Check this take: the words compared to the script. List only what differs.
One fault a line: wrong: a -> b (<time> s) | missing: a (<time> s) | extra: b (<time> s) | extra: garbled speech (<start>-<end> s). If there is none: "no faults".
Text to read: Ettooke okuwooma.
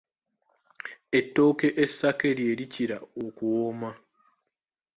extra: essake lye likira (1.8 s)